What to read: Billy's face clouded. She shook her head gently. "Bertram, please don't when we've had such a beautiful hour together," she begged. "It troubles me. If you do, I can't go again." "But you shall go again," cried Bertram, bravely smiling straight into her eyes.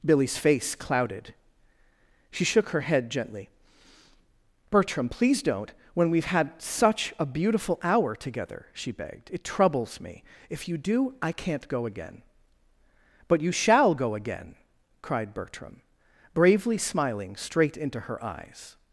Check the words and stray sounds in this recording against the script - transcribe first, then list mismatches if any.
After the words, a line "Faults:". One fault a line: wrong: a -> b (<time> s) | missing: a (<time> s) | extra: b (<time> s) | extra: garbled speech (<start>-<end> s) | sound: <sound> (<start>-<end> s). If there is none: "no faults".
Billy's face clouded. She shook her head gently. "Bertram, please don't when we've had such a beautiful hour together," she begged. "It troubles me. If you do, I can't go again." "But you shall go again," cried Bertram, bravely smiling straight into her eyes.
Faults:
no faults